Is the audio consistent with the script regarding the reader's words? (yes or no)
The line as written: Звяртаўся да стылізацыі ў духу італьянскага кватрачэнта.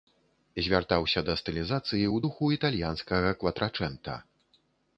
yes